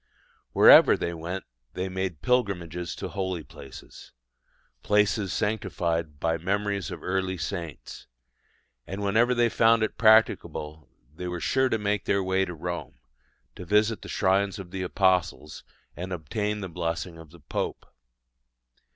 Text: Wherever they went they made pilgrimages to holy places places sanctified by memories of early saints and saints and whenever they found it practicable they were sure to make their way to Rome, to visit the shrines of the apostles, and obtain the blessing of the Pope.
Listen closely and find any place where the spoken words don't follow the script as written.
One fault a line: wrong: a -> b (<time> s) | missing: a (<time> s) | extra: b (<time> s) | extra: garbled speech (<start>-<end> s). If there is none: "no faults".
missing: saints and (9.0 s)